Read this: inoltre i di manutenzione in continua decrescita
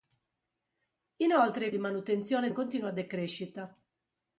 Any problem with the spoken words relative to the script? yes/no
no